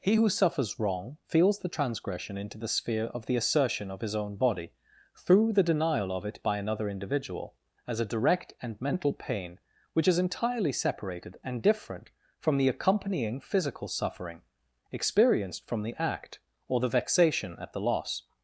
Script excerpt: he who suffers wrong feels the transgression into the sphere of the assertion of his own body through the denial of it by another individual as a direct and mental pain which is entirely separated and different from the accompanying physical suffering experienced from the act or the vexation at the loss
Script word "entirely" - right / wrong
right